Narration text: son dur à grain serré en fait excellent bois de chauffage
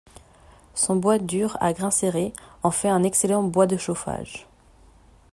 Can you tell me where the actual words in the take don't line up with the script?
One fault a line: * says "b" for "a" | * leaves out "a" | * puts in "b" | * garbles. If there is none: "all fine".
* puts in "bois"
* puts in "un"